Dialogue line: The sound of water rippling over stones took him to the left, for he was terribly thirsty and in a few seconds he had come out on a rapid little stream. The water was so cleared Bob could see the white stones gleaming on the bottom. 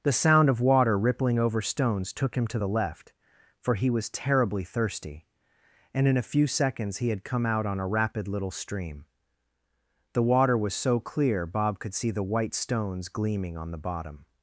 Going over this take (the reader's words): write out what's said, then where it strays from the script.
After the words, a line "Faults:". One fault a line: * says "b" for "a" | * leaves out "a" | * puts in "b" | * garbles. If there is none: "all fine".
The sound of water rippling over stones took him to the left, for he was terribly thirsty and in a few seconds he had come out on a rapid little stream. The water was so clear Bob could see the white stones gleaming on the bottom.
Faults:
* says "clear" for "cleared"